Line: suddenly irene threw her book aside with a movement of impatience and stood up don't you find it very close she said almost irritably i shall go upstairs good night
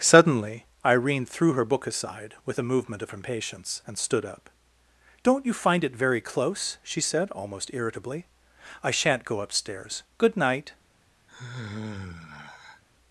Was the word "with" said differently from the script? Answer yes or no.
no